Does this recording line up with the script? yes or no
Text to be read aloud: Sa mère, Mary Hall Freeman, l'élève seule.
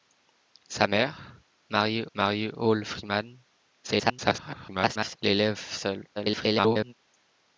no